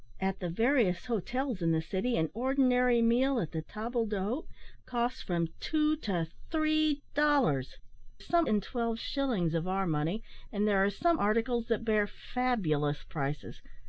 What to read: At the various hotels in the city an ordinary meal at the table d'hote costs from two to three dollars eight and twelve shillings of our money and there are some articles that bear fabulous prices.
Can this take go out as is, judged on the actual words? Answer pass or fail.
fail